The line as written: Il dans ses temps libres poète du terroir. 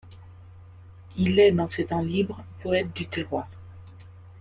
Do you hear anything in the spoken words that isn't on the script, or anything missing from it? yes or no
yes